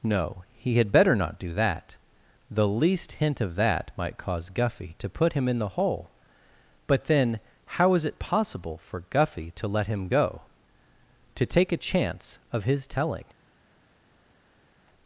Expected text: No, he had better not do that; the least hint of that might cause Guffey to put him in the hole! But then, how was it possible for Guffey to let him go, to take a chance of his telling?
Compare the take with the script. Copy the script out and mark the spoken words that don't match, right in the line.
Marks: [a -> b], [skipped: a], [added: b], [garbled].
No, he had better not do that; the least hint of that might cause Guffey to put him in the hole! But then, how [was -> is] it possible for Guffey to let him go, to take a chance of his telling?